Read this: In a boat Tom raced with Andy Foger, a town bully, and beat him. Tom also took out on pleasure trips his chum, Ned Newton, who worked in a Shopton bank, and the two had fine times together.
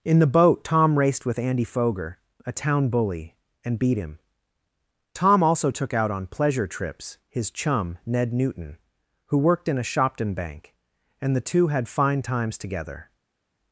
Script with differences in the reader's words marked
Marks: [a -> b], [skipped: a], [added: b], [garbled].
In [a -> the] boat Tom raced with Andy Foger, a town bully, and beat him. Tom also took out on pleasure trips his chum, Ned Newton, who worked in a Shopton bank, and the two had fine times together.